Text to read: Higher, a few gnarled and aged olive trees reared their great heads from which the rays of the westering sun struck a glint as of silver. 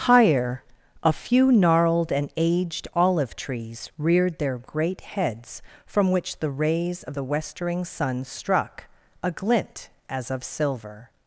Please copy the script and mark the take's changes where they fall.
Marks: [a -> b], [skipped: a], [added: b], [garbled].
Higher, a few gnarled and aged olive trees reared their great heads from which the rays of the westering sun struck a glint as of silver.